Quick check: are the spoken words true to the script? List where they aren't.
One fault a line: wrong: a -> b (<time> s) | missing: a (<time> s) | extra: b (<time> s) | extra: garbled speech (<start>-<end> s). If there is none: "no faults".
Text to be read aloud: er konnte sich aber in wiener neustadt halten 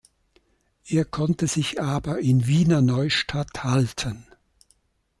no faults